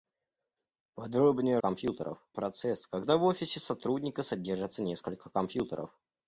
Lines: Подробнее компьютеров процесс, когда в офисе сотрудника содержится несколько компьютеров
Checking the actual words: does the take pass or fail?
pass